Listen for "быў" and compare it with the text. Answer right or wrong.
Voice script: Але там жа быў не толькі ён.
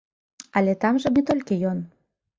wrong